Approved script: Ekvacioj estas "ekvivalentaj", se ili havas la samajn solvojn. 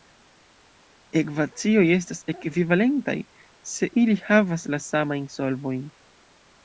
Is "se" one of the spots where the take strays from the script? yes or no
no